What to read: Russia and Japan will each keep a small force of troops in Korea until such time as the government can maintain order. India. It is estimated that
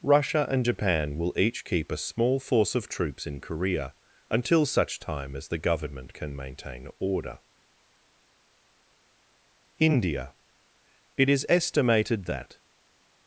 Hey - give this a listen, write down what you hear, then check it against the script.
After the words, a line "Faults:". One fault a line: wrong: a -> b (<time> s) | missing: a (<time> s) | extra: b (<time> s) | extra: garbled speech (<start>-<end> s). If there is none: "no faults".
Russia and Japan will each keep a small force of troops in Korea until such time as the government can maintain order. India. It is estimated that
Faults:
no faults